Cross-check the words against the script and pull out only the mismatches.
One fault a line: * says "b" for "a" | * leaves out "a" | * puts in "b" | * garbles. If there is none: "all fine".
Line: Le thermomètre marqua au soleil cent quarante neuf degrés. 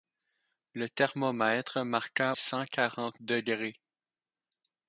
* leaves out "au soleil"
* leaves out "neuf"